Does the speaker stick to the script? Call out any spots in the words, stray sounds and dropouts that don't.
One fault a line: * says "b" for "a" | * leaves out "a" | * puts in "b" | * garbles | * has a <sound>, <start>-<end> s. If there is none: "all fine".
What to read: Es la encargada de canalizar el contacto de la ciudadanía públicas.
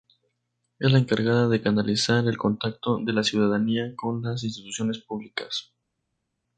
* puts in "con las instituciones"